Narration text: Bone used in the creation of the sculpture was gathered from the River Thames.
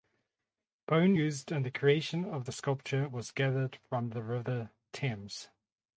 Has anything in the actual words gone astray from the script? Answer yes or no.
no